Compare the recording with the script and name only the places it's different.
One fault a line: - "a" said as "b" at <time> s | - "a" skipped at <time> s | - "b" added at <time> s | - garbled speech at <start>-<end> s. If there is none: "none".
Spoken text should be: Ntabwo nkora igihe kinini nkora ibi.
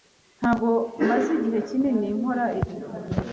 - "nkora" said as "maze" at 1.1 s